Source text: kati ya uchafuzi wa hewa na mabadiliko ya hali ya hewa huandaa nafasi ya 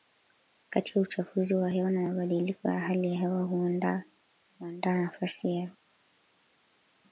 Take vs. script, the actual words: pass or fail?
pass